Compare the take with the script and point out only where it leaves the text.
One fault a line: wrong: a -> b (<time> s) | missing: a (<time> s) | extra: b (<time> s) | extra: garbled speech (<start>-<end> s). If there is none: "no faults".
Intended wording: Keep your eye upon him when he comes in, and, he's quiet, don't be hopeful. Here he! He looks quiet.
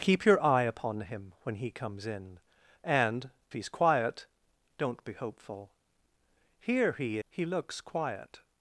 no faults